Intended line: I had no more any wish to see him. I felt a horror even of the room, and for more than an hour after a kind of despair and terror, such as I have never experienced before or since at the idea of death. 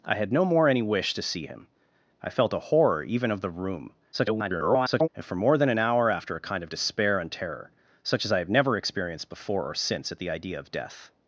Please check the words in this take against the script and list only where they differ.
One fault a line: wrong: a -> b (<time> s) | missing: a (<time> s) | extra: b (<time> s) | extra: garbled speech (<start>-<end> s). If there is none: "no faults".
extra: garbled speech (4.1-5.1 s)